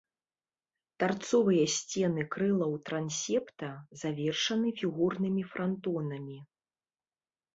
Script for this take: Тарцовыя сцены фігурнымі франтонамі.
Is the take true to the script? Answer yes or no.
no